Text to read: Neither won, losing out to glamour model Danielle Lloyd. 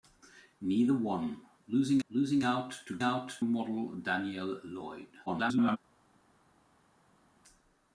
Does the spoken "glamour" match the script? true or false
false